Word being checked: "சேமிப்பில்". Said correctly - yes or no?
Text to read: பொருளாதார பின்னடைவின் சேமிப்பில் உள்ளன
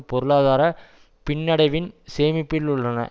yes